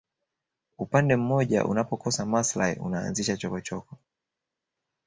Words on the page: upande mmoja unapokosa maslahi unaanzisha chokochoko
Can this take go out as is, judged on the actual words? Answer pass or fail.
pass